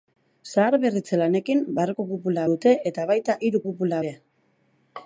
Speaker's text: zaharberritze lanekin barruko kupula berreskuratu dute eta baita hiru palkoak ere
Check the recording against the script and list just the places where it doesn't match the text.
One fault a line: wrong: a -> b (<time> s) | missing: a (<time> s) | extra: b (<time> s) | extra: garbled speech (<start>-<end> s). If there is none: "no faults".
missing: berreskuratu (2.5 s)
wrong: palkoak -> kupula (3.7 s)